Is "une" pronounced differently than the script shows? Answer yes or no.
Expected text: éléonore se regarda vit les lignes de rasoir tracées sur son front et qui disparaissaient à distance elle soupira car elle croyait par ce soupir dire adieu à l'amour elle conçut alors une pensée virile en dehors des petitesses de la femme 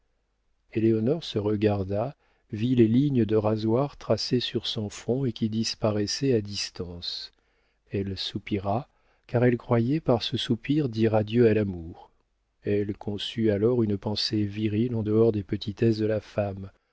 no